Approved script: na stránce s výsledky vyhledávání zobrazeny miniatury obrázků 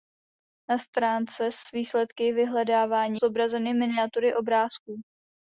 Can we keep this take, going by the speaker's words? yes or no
yes